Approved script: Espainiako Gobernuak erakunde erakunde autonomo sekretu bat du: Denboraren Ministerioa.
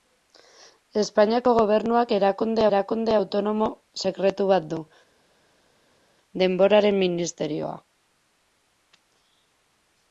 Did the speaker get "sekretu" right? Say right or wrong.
right